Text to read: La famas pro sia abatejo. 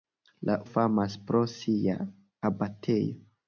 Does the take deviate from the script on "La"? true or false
false